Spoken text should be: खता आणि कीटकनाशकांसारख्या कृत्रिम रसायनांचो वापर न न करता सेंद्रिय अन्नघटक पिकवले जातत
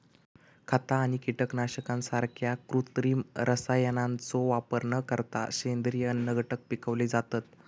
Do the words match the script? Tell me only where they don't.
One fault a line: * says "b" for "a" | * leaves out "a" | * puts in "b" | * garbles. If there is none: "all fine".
* leaves out "न"